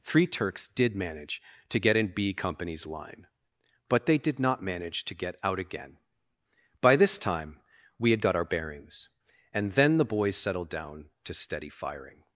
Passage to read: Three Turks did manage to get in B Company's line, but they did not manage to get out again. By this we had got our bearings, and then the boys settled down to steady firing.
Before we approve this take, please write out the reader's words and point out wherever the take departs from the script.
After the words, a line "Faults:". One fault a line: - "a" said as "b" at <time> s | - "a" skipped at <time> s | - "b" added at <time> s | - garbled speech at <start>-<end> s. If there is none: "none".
Three Turks did manage to get in B Company's line, but they did not manage to get out again. By this time we had got our bearings, and then the boys settled down to steady firing.
Faults:
- "time" added at 7.2 s